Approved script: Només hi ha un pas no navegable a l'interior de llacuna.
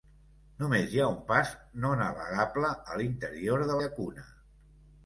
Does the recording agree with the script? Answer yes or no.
yes